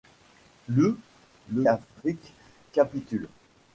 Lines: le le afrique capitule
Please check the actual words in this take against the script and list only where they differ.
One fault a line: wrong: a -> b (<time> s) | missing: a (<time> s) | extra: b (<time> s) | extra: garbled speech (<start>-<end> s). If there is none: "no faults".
no faults